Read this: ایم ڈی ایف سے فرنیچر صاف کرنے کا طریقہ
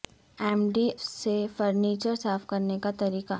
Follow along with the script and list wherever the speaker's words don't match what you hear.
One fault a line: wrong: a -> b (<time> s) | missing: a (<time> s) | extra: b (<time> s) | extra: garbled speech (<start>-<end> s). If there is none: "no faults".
missing: ایف (0.9 s)